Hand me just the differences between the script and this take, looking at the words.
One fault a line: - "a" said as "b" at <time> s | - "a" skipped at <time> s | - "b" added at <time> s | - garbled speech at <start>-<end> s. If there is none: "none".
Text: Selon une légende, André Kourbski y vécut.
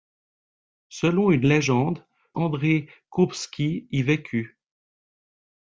none